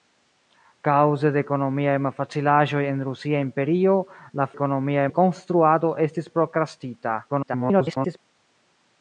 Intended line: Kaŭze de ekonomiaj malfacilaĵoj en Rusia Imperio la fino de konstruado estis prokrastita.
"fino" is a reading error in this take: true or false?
true